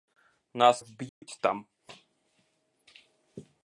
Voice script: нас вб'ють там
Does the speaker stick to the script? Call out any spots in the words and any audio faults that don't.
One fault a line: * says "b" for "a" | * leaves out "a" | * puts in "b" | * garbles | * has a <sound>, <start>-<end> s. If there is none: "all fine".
* has a dropout, 1.1-1.2 s